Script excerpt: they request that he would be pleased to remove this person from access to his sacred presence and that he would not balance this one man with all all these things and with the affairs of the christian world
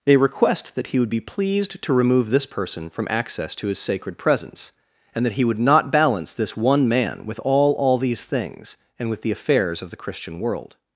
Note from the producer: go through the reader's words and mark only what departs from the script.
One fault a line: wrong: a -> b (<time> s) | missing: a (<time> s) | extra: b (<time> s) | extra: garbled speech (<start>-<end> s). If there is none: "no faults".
no faults